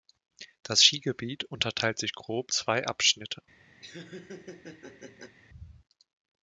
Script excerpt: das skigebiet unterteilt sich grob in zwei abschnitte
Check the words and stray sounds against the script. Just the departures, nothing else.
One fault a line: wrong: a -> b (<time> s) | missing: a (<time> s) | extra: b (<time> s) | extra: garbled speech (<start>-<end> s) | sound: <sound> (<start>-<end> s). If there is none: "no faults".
missing: in (2.5 s)
sound: laugh (3.8-5.4 s)